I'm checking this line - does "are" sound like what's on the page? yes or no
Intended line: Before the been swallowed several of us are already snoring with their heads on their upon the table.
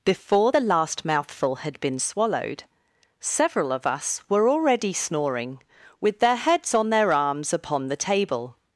no